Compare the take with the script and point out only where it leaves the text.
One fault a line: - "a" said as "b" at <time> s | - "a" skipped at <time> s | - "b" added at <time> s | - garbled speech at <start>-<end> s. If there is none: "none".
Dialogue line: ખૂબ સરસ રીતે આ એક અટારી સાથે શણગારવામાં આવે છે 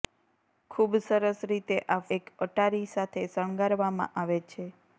none